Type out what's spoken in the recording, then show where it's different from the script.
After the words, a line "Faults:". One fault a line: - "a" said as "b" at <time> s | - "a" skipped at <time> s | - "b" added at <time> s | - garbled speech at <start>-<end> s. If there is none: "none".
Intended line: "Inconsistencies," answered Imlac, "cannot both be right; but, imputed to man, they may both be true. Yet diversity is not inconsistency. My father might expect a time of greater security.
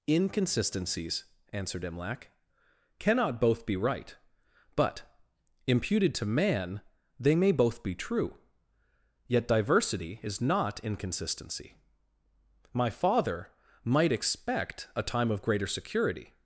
"Inconsistencies," answered Imlac, "cannot both be right; but, imputed to man, they may both be true. Yet diversity is not inconsistency. My father might expect a time of greater security.
Faults:
none